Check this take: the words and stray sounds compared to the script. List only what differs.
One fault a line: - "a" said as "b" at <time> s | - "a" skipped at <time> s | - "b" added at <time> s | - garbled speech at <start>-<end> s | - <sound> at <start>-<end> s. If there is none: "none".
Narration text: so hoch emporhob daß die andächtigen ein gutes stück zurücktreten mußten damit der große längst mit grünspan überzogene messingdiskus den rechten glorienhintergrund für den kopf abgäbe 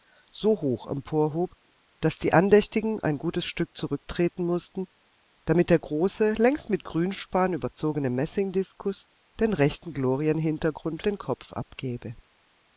- "für" skipped at 11.0 s